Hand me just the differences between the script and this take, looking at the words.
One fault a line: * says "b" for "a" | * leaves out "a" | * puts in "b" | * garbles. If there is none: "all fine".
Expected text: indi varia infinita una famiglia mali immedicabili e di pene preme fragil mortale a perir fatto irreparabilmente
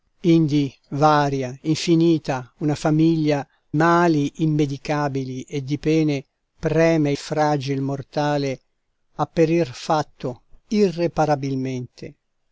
all fine